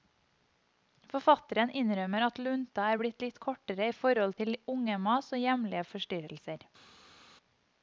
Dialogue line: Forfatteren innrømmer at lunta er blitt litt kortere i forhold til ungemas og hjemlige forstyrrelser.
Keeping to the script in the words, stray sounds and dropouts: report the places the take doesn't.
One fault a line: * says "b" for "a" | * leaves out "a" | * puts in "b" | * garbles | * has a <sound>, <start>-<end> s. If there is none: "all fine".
all fine